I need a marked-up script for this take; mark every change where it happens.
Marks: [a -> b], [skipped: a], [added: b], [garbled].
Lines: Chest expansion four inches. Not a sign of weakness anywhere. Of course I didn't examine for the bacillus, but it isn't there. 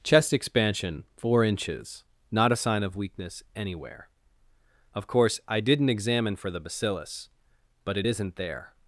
Chest expansion four inches. Not a sign of weakness anywhere. Of course I didn't examine for the bacillus, but it isn't there.